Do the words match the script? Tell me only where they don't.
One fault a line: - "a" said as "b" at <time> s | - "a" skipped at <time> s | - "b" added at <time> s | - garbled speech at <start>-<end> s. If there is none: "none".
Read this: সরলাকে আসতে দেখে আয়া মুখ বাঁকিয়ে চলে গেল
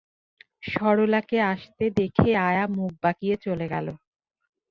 none